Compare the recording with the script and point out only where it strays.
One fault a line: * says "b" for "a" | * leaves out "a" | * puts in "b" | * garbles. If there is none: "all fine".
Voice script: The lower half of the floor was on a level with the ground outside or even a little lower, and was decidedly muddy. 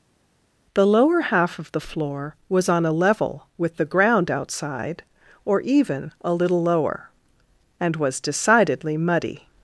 all fine